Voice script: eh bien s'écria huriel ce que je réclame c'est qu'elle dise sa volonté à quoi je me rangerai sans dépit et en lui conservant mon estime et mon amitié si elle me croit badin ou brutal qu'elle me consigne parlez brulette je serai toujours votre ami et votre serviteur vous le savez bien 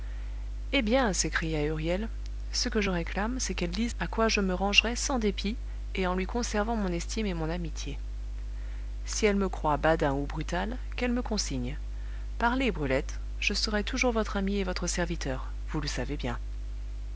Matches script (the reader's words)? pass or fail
fail